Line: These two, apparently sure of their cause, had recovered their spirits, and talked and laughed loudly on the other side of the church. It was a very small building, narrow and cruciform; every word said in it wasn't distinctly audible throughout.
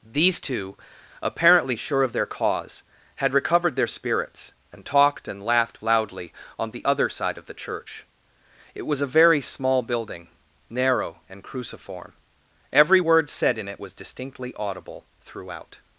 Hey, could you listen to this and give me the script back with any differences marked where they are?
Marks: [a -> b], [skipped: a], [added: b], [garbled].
These two, apparently sure of their cause, had recovered their spirits, and talked and laughed loudly on the other side of the church. It was a very small building, narrow and cruciform; every word said in it [wasn't -> was] distinctly audible throughout.